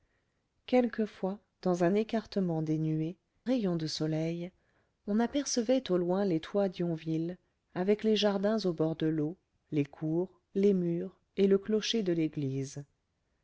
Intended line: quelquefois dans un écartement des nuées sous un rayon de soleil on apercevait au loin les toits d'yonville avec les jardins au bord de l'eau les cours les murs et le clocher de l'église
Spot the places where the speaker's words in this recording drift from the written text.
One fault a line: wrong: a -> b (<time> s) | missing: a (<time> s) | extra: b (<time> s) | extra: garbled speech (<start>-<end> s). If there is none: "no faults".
missing: sous un (3.2 s)